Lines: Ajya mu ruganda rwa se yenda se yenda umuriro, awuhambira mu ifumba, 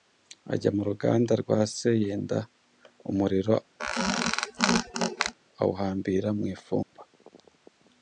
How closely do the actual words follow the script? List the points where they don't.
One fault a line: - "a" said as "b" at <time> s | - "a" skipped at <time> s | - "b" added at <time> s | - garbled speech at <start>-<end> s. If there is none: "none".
- "se yenda" skipped at 2.4 s